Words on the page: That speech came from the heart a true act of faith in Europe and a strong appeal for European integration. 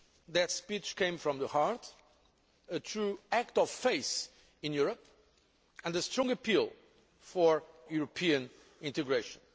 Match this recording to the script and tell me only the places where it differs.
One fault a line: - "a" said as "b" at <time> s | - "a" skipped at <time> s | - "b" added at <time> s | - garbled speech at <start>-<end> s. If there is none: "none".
none